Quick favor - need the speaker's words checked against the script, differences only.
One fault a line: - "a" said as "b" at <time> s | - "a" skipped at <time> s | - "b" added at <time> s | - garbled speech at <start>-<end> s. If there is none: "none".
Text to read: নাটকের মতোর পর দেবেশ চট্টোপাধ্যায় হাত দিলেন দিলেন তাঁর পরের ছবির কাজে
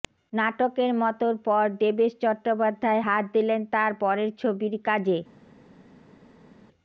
- "দিলেন" skipped at 3.6 s